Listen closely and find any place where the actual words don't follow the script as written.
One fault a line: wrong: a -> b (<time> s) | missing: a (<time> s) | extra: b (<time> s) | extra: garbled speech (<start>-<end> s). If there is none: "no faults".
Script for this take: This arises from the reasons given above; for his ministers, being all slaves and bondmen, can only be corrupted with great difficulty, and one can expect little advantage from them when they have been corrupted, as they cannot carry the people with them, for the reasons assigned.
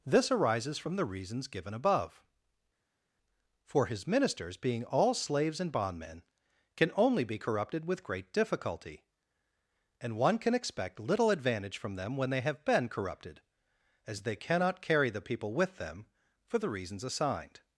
no faults